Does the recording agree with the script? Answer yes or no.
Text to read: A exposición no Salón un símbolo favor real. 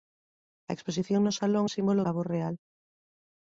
yes